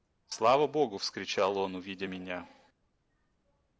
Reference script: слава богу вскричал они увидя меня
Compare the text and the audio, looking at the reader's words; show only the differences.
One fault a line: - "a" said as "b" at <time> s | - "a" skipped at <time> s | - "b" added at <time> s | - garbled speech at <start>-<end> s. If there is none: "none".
- "они" said as "он" at 1.6 s